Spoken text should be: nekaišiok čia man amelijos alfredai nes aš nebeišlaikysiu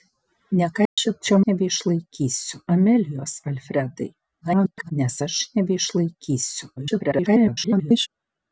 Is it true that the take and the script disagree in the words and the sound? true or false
true